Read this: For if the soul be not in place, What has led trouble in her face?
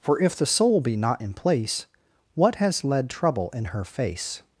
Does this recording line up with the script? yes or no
yes